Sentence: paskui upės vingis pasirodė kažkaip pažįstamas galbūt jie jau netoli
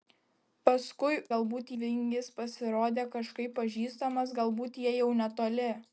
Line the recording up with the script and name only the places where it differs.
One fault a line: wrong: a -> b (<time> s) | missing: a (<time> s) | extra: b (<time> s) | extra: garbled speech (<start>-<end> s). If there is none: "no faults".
wrong: upės -> galbūt (1.3 s)